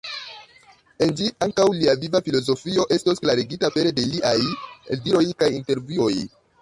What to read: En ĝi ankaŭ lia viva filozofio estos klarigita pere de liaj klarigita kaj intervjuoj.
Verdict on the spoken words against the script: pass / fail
fail